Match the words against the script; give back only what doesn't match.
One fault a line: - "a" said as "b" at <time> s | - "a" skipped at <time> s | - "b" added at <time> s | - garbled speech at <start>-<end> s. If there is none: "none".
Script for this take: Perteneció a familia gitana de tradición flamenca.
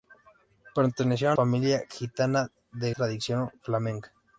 none